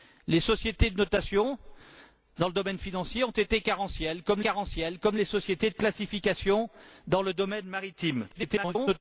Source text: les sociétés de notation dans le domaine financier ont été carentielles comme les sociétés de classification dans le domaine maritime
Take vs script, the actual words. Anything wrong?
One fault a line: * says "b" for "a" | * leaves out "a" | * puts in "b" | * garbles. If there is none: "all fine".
* puts in "carentielles comme"
* garbles